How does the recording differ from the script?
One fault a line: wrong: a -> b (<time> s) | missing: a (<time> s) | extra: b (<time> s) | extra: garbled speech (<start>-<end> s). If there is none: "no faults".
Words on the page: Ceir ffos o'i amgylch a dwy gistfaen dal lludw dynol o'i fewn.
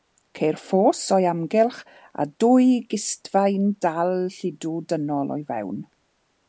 no faults